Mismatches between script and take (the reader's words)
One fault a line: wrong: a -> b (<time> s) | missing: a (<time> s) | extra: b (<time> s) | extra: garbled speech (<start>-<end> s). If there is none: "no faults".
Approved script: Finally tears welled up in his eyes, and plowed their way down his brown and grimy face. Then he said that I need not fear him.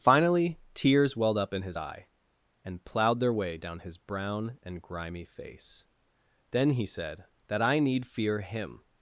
wrong: eyes -> eye (1.7 s)
missing: not (8.1 s)